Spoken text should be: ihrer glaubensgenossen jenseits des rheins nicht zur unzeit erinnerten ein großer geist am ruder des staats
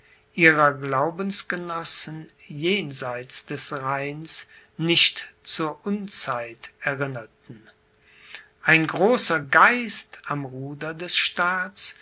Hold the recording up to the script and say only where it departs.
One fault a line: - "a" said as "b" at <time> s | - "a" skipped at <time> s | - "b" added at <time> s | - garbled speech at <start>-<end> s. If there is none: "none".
none